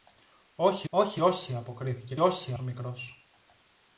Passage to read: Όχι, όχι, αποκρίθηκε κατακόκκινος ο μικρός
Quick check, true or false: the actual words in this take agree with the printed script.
false